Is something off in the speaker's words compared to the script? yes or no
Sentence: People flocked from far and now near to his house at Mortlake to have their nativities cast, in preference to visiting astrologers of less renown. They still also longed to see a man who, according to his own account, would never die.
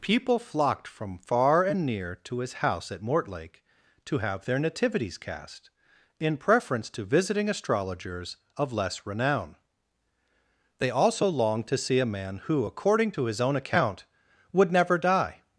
yes